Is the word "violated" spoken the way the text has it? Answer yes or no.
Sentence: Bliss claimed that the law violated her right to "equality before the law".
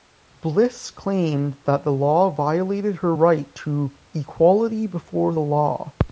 yes